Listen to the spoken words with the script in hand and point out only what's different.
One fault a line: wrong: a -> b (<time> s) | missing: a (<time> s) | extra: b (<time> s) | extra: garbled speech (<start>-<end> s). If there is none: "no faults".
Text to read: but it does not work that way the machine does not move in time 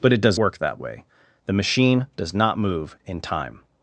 missing: not (0.4 s)